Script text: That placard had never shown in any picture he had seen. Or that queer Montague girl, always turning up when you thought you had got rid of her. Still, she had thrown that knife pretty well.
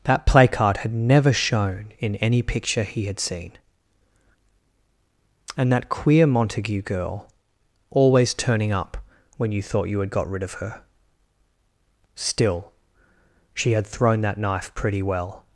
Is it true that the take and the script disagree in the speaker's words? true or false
true